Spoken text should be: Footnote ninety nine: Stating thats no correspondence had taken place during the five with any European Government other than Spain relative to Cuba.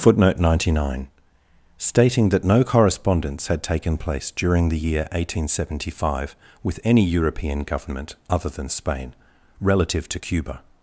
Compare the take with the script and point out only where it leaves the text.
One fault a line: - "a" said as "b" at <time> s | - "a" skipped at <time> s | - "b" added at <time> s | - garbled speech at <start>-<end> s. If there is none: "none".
- "thats" said as "that" at 2.3 s
- "year eighteen seventy" added at 4.8 s